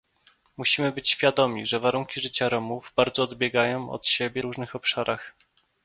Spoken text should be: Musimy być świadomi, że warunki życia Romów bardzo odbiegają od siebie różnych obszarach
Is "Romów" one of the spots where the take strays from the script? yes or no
no